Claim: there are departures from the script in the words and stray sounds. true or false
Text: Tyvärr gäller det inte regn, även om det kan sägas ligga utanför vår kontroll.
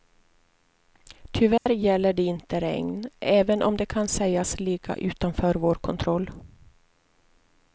true